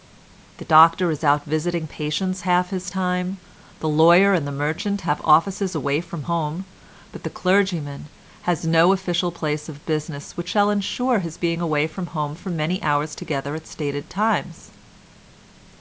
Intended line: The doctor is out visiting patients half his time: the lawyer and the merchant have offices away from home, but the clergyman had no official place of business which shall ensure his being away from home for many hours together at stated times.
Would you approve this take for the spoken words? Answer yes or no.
no